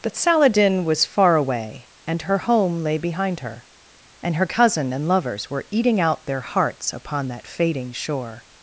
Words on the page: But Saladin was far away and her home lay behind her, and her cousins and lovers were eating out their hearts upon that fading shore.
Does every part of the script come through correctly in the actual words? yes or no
no